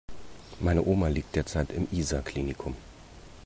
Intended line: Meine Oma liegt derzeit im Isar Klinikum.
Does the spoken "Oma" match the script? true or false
true